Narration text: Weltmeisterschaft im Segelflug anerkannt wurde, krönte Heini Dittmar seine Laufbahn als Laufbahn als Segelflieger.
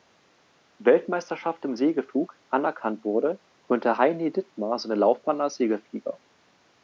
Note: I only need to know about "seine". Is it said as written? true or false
true